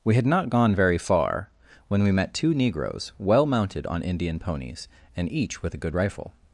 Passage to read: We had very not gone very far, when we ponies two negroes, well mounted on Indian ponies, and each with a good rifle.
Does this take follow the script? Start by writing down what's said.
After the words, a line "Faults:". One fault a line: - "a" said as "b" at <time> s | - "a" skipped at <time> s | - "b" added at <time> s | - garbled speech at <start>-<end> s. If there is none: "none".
We had not gone very far, when we met two negroes, well mounted on Indian ponies, and each with a good rifle.
Faults:
- "very" skipped at 0.2 s
- "ponies" said as "met" at 2.1 s